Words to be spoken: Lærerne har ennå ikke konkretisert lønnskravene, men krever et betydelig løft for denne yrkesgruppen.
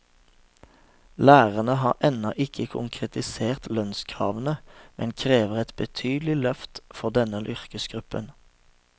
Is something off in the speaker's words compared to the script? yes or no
no